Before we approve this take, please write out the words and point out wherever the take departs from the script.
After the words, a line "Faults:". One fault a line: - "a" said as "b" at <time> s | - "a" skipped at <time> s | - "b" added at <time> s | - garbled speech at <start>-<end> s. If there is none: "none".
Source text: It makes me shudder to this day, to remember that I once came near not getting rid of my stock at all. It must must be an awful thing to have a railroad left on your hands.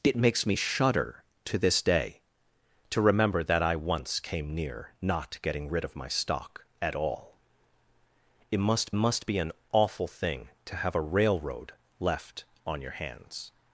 It makes me shudder to this day, to remember that I once came near not getting rid of my stock at all. It must must be an awful thing to have a railroad left on your hands.
Faults:
none